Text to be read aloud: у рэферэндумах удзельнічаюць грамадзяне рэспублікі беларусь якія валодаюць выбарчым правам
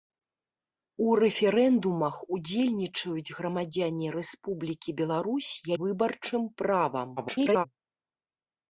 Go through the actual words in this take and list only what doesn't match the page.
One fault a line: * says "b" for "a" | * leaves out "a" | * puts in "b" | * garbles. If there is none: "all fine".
* leaves out "якія валодаюць"
* garbles